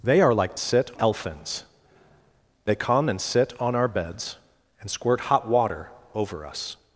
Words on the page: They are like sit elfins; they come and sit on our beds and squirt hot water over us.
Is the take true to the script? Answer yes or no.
yes